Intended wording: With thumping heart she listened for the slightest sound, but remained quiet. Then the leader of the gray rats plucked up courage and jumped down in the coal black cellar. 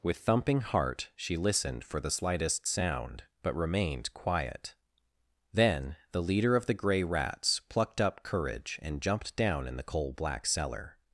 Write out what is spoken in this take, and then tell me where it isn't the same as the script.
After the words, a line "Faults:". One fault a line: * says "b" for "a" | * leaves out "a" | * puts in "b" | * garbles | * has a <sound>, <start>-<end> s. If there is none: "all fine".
With thumping heart she listened for the slightest sound, but remained quiet. Then the leader of the gray rats plucked up courage and jumped down in the coal black cellar.
Faults:
all fine